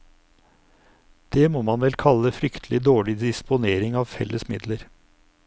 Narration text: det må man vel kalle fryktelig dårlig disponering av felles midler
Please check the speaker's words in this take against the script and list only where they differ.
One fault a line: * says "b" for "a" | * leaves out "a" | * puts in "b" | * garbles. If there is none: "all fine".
all fine